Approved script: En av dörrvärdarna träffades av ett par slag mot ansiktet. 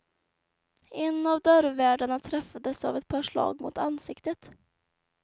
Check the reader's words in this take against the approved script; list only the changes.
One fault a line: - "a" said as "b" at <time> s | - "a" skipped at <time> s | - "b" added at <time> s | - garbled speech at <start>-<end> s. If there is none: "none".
none